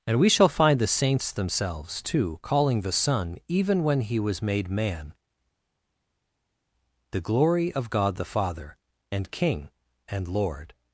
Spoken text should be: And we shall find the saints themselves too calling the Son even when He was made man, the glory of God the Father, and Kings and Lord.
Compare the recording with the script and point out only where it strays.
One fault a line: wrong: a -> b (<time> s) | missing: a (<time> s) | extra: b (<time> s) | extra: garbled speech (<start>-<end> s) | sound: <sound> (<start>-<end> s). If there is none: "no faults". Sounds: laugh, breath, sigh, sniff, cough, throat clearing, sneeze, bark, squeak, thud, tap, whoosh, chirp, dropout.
wrong: Kings -> King (9.3 s)